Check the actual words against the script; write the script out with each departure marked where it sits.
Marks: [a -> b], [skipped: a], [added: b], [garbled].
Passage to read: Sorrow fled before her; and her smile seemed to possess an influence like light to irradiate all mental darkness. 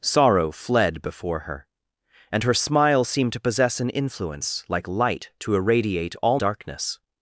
Sorrow fled before her; and her smile seemed to possess an influence like light to irradiate all [skipped: mental] darkness.